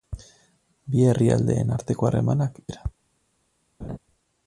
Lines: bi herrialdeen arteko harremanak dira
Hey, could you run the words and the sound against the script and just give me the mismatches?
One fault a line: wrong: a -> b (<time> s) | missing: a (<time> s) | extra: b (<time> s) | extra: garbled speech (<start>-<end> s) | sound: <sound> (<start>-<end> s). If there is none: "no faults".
sound: laugh (3.8-4.0 s)